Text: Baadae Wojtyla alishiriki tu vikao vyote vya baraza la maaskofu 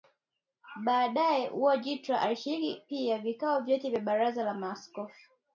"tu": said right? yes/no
no